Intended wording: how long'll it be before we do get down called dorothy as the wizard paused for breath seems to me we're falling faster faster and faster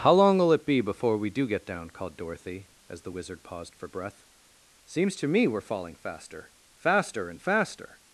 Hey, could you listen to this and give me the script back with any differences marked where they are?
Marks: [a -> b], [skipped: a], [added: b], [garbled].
how long'll it be before we do get down called dorothy as the wizard paused for breath seems to me we're falling faster faster and faster